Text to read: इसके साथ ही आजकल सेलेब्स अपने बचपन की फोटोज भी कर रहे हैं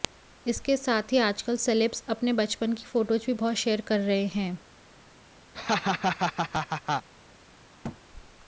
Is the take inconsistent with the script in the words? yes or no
yes